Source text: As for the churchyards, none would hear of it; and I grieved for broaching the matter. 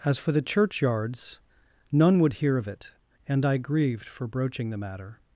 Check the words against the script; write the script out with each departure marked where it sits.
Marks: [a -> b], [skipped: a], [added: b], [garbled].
As for the churchyards, none would hear of it; and I grieved for broaching the matter.